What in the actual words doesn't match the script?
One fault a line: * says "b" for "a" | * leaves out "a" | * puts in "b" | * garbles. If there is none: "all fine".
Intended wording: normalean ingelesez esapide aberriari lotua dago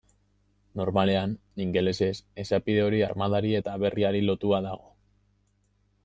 * puts in "hori armadari eta"